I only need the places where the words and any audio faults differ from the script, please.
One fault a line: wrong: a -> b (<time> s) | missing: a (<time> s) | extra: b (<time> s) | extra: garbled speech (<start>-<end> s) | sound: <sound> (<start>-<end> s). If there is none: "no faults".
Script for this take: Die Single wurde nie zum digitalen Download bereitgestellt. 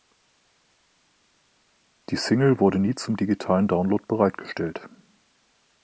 no faults